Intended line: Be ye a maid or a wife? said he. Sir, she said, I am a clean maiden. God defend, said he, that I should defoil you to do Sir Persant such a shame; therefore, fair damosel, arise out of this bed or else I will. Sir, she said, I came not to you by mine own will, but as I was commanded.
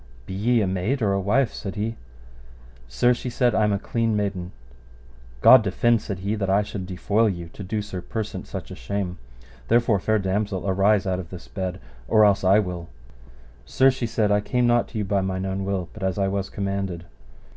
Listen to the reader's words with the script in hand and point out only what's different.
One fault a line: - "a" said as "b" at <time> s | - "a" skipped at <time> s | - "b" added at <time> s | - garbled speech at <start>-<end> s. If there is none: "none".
none